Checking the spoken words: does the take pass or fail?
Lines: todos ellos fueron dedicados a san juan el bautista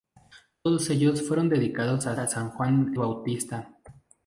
fail